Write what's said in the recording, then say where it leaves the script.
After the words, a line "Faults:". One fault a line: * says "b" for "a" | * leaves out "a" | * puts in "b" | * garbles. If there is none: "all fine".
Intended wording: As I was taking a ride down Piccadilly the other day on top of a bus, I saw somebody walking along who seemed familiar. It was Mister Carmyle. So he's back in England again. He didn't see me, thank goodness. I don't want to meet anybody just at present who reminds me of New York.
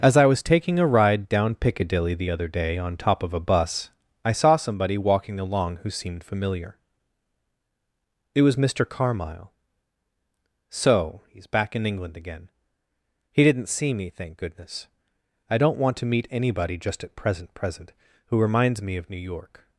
As I was taking a ride down Piccadilly the other day on top of a bus, I saw somebody walking along who seemed familiar. It was Mister Carmyle. So he's back in England again. He didn't see me, thank goodness. I don't want to meet anybody just at present present who reminds me of New York.
Faults:
* puts in "present"